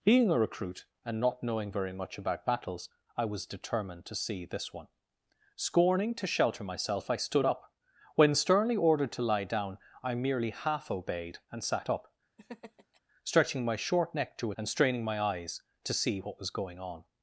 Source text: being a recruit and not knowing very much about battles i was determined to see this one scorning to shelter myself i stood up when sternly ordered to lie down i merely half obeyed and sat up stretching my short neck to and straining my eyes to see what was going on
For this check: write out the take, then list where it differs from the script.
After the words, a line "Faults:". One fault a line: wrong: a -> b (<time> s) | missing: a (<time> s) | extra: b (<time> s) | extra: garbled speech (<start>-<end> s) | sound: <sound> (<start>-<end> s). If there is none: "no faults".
being a recruit and not knowing very much about battles i was determined to see this one scorning to shelter myself i stood up when sternly ordered to lie down i merely half obeyed and sat up stretching my short neck to and straining my eyes to see what was going on
Faults:
sound: laugh (12.4-13.0 s)